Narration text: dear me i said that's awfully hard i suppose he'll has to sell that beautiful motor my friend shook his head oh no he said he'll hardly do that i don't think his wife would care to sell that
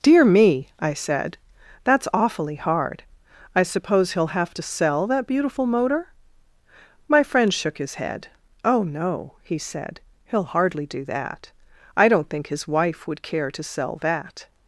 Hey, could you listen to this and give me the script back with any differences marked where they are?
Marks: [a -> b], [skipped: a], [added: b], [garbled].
dear me i said that's awfully hard i suppose he'll [has -> have] to sell that beautiful motor my friend shook his head oh no he said he'll hardly do that i don't think his wife would care to sell that